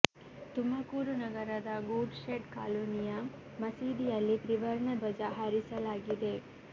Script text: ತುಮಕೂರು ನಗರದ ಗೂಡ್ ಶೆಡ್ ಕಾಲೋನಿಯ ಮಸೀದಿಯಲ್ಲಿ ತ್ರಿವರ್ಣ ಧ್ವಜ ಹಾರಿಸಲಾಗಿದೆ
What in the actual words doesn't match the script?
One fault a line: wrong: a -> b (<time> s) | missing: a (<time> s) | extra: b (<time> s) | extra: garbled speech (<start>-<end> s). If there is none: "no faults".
no faults